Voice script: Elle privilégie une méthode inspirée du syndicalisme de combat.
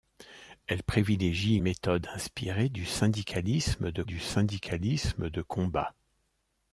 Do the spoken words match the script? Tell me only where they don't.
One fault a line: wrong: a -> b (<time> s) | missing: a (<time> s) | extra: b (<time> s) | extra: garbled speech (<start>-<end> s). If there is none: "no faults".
missing: une (1.6 s)
extra: du syndicalisme de (4.0 s)